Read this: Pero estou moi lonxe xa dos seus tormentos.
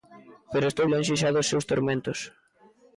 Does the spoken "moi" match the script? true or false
false